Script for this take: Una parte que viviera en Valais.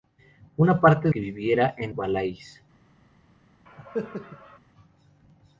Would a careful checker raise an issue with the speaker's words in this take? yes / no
no